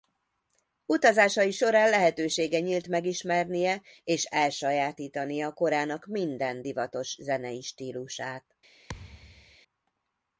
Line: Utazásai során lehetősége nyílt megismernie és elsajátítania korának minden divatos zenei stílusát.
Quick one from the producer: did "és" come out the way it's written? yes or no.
yes